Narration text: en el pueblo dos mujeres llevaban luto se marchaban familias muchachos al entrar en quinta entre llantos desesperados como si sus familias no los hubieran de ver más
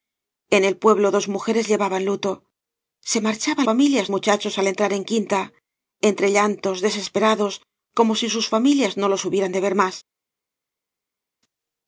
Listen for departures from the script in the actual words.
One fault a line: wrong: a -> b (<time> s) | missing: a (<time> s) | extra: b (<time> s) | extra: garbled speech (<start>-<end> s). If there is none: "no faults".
no faults